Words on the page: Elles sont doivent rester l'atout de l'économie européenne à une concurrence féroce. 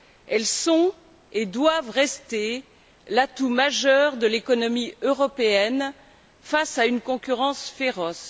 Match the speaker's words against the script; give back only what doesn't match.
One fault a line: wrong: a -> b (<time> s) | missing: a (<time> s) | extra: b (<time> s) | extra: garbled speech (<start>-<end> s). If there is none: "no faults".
extra: et (1.3 s)
extra: majeur (3.5 s)
extra: face (6.4 s)